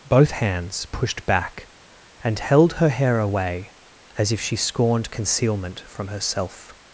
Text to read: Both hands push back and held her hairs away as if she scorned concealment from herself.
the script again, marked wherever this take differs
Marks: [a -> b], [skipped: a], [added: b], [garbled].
Both hands [push -> pushed] back and held her [hairs -> hair] away as if she scorned concealment from herself.